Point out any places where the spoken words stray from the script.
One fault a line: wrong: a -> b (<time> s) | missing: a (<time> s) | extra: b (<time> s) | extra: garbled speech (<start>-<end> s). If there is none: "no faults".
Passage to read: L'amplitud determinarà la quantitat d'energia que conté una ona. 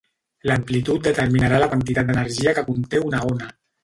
no faults